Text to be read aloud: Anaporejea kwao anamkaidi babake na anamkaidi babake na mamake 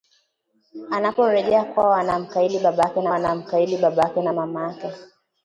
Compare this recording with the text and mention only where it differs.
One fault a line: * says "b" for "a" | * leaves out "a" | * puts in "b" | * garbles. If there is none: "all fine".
all fine